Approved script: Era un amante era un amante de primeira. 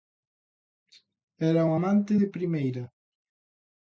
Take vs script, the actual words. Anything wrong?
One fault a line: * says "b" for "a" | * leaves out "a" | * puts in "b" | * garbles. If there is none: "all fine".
* leaves out "era un amante"